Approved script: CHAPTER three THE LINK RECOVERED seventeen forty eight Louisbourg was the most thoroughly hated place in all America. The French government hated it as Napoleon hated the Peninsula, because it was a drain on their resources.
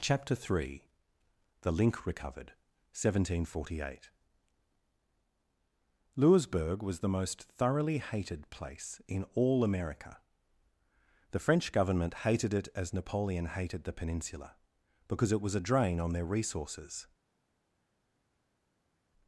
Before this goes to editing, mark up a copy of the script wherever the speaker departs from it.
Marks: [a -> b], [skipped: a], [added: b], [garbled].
CHAPTER three THE LINK RECOVERED seventeen forty eight Louisbourg was the most thoroughly hated place in all America. The French government hated it as Napoleon hated the Peninsula, because it was a drain on their resources.